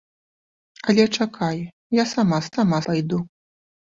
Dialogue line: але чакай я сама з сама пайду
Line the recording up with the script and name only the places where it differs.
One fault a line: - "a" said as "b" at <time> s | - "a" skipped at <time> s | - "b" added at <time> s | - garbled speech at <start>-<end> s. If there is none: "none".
none